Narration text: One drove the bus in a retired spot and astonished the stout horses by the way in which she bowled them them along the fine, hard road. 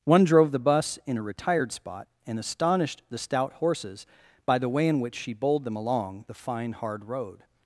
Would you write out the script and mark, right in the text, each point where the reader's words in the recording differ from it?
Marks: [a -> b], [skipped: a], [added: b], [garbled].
One drove the bus in a retired spot and astonished the stout horses by the way in which she bowled them [skipped: them] along the fine, hard road.